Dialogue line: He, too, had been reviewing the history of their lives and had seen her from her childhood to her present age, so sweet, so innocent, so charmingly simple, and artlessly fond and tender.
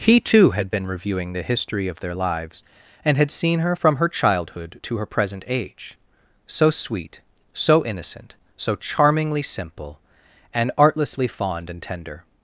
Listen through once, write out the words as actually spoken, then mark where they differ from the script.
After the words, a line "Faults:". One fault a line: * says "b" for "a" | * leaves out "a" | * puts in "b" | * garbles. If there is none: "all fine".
He, too, had been reviewing the history of their lives and had seen her from her childhood to her present age, so sweet, so innocent, so charmingly simple, and artlessly fond and tender.
Faults:
all fine